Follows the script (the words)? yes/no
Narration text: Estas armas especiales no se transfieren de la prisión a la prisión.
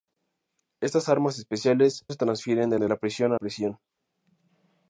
no